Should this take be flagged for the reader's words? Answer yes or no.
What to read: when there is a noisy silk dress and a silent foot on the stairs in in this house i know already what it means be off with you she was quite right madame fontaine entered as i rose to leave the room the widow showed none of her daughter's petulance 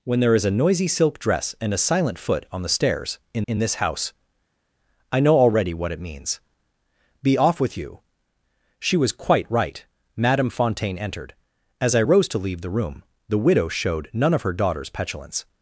no